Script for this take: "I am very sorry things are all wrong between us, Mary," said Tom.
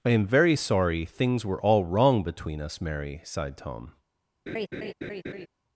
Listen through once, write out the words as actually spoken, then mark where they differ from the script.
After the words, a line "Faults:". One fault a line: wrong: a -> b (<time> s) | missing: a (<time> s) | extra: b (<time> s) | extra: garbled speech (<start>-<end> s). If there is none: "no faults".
"I am very sorry things were all wrong between us, Mary," sighed Tom.
Faults:
wrong: are -> were (1.4 s)
wrong: said -> sighed (3.2 s)